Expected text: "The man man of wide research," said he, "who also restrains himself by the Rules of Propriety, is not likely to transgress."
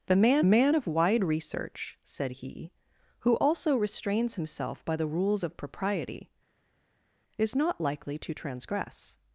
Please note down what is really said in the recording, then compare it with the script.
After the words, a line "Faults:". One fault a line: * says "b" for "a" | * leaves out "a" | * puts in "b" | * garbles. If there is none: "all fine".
"The man man of wide research," said he, "who also restrains himself by the Rules of Propriety, is not likely to transgress."
Faults:
all fine